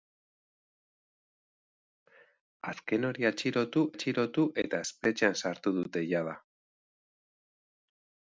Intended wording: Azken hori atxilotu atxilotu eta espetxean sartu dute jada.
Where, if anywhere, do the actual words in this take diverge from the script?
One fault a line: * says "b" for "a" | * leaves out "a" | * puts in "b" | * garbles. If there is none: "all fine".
all fine